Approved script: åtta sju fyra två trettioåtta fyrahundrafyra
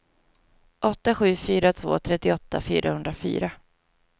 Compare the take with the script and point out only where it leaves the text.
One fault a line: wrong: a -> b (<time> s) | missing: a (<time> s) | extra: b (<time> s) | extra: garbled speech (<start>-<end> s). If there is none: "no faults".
no faults